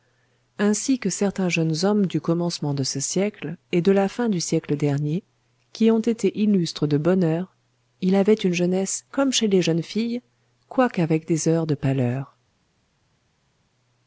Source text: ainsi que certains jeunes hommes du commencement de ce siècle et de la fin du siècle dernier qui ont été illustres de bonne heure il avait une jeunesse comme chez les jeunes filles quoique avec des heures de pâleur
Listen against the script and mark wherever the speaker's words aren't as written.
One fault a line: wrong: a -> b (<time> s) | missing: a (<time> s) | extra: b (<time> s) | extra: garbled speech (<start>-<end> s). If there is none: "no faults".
no faults